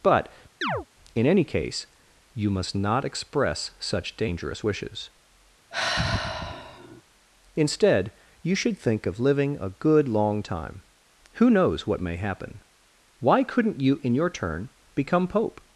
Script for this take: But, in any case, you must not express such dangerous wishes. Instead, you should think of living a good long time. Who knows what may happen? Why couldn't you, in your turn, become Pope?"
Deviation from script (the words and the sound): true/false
true